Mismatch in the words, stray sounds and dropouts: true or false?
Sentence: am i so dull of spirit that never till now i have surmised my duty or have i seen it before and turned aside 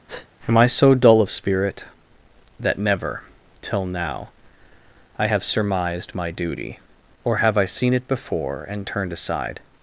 true